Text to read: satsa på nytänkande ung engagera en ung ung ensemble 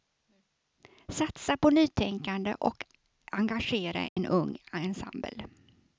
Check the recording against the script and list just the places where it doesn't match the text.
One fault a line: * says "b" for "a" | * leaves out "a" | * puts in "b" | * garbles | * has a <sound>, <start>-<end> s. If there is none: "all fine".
* says "och" for "ung"
* has a dropout, 4.1-4.2 s
* leaves out "ung"